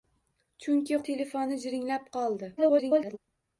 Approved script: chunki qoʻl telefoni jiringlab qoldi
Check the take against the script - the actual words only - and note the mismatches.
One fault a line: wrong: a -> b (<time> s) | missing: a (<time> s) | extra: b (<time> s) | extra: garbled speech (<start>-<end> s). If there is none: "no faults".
missing: qoʻl (1.0 s)
extra: garbled speech (2.6-3.2 s)